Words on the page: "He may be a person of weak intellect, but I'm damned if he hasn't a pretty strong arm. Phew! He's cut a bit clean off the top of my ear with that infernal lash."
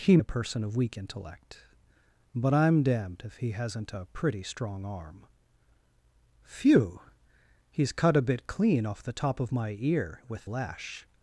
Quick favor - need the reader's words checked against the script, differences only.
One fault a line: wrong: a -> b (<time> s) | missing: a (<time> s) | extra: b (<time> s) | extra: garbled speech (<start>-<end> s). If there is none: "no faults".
missing: may be (0.2 s)
missing: that infernal (10.5 s)